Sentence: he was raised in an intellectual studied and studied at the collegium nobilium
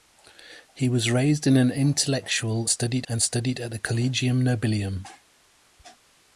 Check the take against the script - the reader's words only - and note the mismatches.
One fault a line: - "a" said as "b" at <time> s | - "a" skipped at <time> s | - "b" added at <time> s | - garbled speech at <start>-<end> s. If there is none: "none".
none